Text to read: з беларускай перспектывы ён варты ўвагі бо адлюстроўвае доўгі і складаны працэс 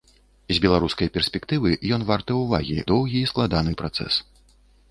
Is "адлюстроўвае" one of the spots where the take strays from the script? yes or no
yes